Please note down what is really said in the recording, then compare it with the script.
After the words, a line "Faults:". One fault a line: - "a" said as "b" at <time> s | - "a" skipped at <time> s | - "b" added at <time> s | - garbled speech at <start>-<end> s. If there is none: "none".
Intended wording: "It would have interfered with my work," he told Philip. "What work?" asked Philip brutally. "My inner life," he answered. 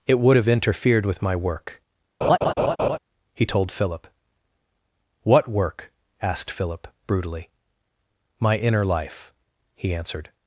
"It would have interfered with my work," he told Philip. "What work?" asked Philip brutally. "My inner life," he answered.
Faults:
none